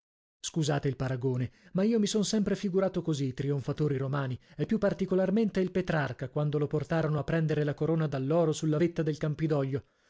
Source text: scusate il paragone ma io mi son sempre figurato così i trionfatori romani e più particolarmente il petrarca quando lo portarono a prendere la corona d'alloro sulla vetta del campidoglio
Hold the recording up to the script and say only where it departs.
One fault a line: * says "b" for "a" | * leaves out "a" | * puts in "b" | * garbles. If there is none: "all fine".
all fine